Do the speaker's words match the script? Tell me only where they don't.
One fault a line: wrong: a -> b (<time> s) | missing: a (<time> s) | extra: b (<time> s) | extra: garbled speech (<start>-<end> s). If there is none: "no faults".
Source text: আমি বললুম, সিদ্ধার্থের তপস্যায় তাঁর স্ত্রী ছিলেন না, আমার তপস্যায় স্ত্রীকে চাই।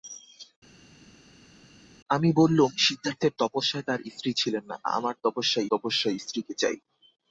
extra: তপস্যায় (5.7 s)